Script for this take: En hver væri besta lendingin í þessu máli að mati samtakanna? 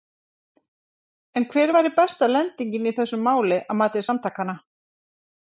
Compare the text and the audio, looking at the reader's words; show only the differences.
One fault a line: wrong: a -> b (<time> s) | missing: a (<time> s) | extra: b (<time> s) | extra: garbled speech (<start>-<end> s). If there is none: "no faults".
no faults